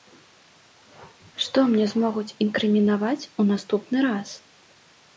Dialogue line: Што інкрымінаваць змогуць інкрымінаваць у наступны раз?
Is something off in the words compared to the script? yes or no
yes